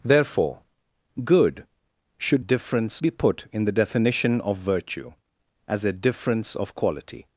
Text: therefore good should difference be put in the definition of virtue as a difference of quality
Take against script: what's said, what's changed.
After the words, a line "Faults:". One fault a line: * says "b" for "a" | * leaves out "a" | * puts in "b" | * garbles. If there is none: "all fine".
therefore good should difference be put in the definition of virtue as a difference of quality
Faults:
all fine